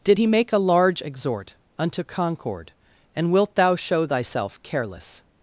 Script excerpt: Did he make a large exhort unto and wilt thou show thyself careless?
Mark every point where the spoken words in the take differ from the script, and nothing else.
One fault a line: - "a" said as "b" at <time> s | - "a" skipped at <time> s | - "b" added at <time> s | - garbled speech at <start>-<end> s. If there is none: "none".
- "concord" added at 2.0 s